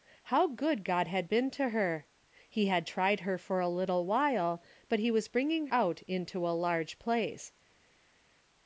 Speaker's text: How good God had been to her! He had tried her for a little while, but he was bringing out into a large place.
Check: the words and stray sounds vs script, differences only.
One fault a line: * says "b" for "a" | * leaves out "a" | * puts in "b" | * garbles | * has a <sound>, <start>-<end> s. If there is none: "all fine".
all fine